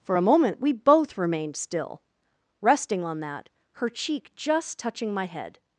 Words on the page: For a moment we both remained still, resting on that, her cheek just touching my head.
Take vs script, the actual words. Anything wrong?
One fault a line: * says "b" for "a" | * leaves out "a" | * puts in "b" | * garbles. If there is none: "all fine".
all fine